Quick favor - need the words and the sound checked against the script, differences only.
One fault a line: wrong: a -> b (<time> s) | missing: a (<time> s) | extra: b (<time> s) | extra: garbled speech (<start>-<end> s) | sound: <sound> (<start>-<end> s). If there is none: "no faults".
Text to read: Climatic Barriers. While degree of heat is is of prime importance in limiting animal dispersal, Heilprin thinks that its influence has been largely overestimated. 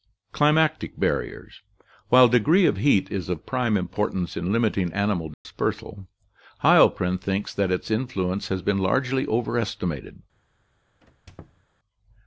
missing: is (3.3 s)
sound: dropout (5.3-5.5 s)
sound: squeak (11.0-11.6 s)